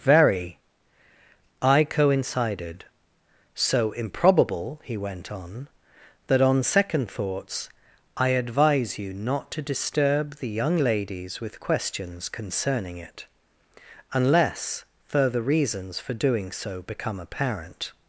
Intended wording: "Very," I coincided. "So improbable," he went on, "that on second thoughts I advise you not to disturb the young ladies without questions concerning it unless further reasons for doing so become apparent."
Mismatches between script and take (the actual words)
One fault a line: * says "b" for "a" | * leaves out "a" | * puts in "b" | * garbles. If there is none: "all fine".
* says "with" for "without"